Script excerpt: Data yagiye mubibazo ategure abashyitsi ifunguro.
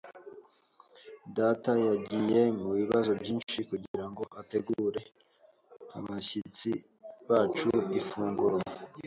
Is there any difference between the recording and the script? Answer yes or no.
yes